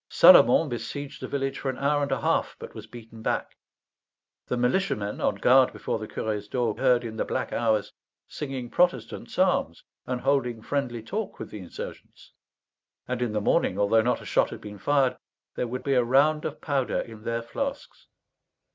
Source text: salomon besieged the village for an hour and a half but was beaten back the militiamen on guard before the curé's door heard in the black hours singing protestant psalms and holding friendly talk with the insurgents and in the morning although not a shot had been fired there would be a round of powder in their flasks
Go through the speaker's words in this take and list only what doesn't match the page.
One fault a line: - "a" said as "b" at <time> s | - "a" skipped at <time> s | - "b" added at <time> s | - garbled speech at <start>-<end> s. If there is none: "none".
none